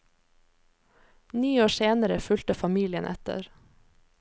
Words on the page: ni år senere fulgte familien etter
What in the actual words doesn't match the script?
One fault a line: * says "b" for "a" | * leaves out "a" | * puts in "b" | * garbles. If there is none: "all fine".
all fine